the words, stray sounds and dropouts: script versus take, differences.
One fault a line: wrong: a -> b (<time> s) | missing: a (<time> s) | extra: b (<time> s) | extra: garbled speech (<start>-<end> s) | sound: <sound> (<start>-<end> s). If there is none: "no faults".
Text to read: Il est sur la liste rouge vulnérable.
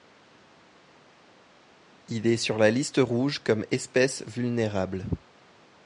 extra: comme espèce (3.4 s)